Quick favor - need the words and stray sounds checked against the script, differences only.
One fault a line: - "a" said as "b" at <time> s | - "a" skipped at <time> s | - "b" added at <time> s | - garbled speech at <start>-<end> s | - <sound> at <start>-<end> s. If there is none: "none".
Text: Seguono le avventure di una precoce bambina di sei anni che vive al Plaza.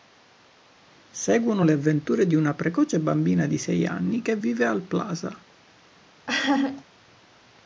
- laugh at 6.3-6.8 s